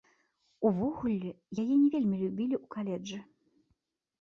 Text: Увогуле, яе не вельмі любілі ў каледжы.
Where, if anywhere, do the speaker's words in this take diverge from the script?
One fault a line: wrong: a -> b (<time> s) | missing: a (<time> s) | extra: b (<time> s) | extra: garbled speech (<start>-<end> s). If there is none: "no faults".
no faults